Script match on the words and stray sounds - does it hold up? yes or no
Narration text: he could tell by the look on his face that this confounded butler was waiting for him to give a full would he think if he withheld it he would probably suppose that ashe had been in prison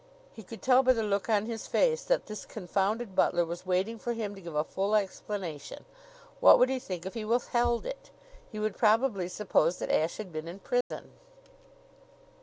no